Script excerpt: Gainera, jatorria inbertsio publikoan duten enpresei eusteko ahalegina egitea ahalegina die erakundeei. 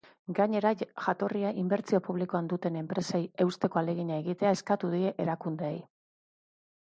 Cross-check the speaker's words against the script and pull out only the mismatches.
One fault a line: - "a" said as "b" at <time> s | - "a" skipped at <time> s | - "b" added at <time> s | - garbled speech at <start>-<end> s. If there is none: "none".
- "ahalegina" said as "eskatu" at 4.6 s